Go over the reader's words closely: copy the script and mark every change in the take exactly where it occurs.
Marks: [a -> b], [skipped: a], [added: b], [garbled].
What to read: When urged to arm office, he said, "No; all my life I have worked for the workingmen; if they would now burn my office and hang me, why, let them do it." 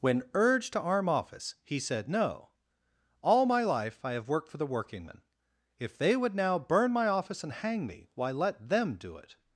When urged to arm office, he said, "No; all my life I have worked for the workingmen; if they would now burn my office and hang me, why, let them do it."